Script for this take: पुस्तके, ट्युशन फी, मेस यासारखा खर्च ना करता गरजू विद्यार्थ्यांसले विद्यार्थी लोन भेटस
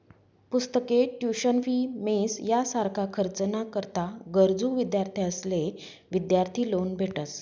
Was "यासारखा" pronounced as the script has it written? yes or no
yes